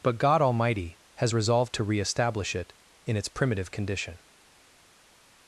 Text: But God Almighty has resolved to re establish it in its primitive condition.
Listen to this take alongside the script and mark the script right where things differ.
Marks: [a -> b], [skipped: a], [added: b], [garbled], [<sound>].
But God Almighty has resolved to re establish it in its primitive condition.